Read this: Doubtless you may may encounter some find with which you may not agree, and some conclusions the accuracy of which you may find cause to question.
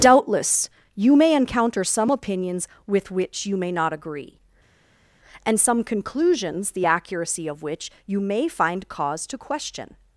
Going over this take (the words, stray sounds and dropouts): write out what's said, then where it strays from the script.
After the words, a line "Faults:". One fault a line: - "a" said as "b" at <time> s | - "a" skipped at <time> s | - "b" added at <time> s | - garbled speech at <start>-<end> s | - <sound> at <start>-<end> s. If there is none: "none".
Doubtless you may encounter some opinions with which you may not agree, and some conclusions the accuracy of which you may find cause to question.
Faults:
- "may" skipped at 1.4 s
- "find" said as "opinions" at 2.1 s